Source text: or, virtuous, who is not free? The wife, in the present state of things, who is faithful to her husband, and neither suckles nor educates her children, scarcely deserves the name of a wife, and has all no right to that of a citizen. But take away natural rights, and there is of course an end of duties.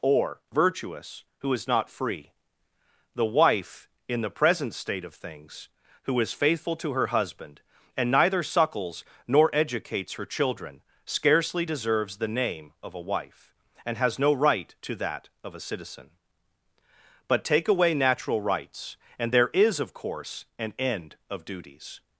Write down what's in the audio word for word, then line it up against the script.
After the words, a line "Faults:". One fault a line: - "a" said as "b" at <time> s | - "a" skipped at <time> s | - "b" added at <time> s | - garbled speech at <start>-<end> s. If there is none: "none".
or, virtuous, who is not free? The wife, in the present state of things, who is faithful to her husband, and neither suckles nor educates her children, scarcely deserves the name of a wife, and has no right to that of a citizen. But take away natural rights, and there is of course an end of duties.
Faults:
- "all" skipped at 14.2 s